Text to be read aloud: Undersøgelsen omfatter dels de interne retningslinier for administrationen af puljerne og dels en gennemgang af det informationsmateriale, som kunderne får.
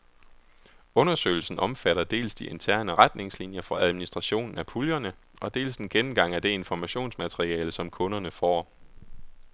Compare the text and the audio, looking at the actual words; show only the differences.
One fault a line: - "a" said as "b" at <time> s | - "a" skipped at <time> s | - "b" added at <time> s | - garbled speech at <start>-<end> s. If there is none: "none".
none